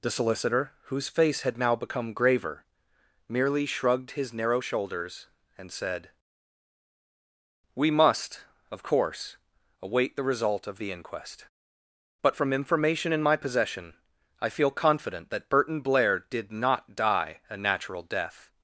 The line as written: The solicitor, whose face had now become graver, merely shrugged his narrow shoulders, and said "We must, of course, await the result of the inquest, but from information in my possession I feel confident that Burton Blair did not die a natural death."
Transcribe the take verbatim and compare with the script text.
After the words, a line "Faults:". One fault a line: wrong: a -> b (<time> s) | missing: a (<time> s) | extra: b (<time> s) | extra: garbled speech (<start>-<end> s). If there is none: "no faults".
The solicitor, whose face had now become graver, merely shrugged his narrow shoulders, and said "We must, of course, await the result of the inquest, but from information in my possession I feel confident that Burton Blair did not die a natural death."
Faults:
no faults